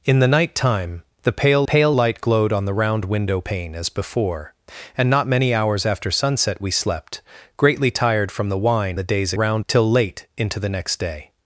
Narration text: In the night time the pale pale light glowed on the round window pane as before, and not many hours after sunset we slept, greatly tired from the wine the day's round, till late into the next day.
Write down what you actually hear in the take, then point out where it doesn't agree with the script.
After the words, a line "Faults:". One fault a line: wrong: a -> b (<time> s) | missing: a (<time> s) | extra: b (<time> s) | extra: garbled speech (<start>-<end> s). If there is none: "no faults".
In the night time the pale pale light glowed on the round window pane as before, and not many hours after sunset we slept, greatly tired from the wine the day's round, till late into the next day.
Faults:
no faults